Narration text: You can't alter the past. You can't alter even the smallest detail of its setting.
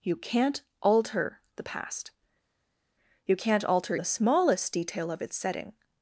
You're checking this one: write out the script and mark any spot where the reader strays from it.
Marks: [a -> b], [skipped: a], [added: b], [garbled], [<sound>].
You can't alter the past. You can't alter [skipped: even] the smallest detail of its setting.